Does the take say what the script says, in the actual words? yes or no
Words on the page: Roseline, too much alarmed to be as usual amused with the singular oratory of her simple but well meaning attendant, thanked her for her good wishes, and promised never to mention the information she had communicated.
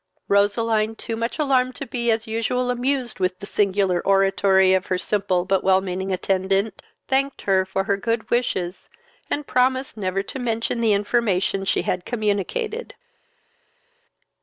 yes